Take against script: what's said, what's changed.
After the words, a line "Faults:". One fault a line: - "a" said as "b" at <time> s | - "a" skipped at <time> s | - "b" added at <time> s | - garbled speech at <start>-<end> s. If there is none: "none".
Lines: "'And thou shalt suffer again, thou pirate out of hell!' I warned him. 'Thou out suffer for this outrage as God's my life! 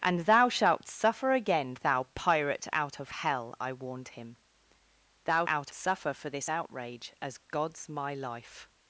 "'And thou shalt suffer again, thou pirate out of hell!' I warned him. 'Thou out suffer for this outrage as God's my life!
Faults:
none